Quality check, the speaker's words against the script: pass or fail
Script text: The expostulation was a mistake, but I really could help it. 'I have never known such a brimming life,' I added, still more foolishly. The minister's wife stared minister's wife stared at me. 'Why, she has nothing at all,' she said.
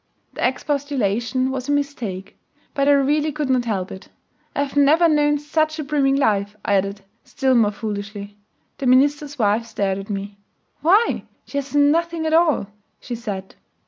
fail